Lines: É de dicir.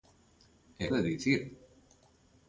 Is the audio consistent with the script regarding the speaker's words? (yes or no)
yes